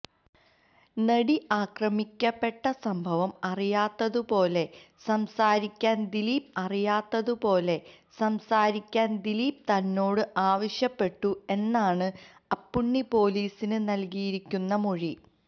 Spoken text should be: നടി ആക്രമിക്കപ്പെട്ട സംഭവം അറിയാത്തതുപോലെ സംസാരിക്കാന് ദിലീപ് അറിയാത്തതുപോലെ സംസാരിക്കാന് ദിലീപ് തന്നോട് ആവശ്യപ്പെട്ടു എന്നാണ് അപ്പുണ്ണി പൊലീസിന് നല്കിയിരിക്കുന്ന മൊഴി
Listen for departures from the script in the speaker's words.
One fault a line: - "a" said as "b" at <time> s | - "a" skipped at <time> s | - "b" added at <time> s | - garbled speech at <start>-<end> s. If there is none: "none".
none